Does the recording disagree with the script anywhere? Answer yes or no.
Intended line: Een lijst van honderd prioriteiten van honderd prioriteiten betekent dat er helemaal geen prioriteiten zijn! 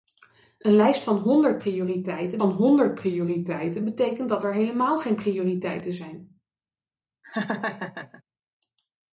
no